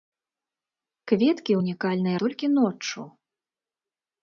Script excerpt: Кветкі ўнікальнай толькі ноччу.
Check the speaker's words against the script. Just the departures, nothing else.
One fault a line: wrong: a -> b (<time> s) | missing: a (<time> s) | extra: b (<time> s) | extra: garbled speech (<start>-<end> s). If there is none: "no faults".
no faults